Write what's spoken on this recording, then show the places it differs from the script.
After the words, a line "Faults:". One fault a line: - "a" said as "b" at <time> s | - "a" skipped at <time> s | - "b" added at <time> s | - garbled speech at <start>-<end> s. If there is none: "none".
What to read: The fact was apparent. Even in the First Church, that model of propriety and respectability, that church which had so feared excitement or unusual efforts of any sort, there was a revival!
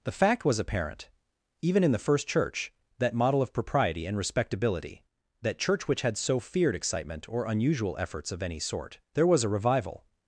The fact was apparent. Even in the First Church, that model of propriety and respectability, that church which had so feared excitement or unusual efforts of any sort, there was a revival!
Faults:
none